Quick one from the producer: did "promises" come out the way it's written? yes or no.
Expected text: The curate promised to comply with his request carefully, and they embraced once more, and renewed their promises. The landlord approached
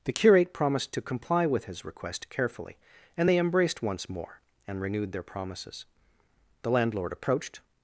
yes